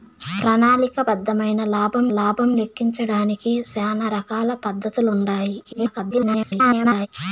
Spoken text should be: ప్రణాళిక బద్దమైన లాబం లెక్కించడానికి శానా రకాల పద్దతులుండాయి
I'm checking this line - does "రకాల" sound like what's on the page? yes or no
yes